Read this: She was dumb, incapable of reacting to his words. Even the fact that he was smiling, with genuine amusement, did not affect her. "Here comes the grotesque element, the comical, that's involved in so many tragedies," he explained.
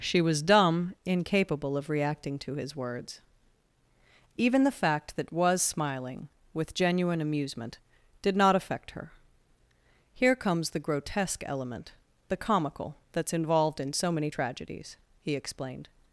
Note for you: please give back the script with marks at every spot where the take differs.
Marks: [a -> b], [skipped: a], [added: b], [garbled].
She was dumb, incapable of reacting to his words. Even the fact that [skipped: he] was smiling, with genuine amusement, did not affect her. "Here comes the grotesque element, the comical, that's involved in so many tragedies," he explained.